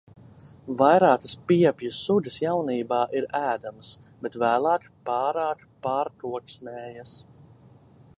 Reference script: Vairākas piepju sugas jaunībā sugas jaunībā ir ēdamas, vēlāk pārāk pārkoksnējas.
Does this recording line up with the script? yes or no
no